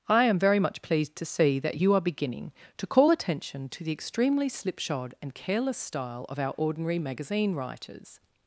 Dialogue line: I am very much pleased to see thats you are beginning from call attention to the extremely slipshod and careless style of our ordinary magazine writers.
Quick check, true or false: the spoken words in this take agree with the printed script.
false